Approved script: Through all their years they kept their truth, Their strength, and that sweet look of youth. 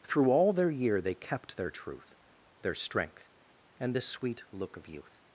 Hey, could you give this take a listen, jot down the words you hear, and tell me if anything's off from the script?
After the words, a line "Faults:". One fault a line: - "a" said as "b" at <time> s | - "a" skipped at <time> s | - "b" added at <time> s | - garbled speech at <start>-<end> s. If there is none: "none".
Through all their year they kept their truth, Their strength, and this sweet look of youth.
Faults:
- "years" said as "year" at 0.7 s
- "that" said as "this" at 3.9 s